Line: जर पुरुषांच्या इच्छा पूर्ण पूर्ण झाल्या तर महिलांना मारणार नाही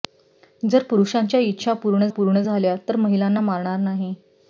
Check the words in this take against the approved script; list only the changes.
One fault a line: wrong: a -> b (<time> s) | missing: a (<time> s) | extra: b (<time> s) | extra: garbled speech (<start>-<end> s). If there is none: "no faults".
no faults